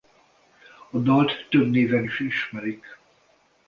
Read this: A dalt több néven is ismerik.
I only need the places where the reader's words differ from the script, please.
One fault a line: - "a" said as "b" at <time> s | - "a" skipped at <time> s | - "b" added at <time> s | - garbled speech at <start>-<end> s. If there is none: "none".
none